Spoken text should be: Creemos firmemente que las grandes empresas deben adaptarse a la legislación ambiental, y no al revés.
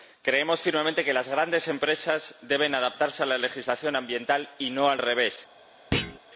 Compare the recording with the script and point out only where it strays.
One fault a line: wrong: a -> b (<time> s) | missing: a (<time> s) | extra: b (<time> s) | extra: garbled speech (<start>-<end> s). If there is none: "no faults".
no faults